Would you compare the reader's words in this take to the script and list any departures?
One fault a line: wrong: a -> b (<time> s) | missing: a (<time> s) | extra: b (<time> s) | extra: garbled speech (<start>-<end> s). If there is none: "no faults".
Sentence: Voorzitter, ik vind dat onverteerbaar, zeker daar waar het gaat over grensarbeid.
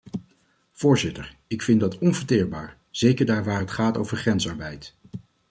no faults